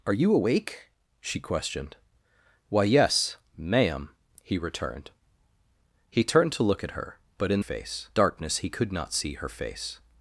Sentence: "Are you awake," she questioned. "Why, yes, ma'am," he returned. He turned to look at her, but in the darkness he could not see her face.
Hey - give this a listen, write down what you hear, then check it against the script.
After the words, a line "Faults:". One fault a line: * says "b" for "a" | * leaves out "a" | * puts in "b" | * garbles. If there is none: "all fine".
"Are you awake," she questioned. "Why, yes, ma'am," he returned. He turned to look at her, but in face darkness he could not see her face.
Faults:
* says "face" for "the"